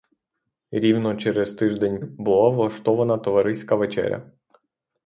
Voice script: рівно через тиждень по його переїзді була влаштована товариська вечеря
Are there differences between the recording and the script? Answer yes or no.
yes